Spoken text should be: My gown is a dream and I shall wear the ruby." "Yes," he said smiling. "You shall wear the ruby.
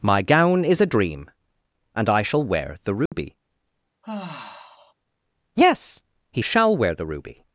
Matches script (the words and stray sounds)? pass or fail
fail